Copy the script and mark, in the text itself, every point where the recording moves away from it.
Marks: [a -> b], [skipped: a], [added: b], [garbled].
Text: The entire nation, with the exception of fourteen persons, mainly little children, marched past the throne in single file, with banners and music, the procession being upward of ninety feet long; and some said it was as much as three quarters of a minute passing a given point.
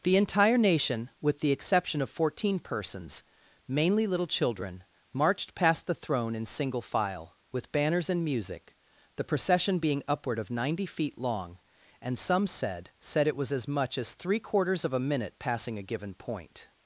The entire nation, with the exception of fourteen persons, mainly little children, marched past the throne in single file, with banners and music, the procession being upward of ninety feet long; and some said [added: said] it was as much as three quarters of a minute passing a given point.